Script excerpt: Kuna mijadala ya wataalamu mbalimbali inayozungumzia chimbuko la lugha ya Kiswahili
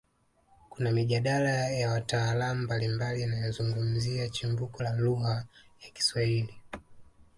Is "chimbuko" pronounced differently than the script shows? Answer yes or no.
no